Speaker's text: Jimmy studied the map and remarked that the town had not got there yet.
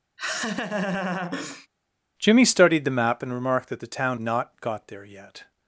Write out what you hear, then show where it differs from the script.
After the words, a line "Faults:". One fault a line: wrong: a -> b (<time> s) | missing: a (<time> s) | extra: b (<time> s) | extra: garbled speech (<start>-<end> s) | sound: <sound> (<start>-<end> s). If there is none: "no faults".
Jimmy studied the map and remarked that the town not got there yet.
Faults:
sound: laugh (0.2-1.7 s)
missing: had (4.2 s)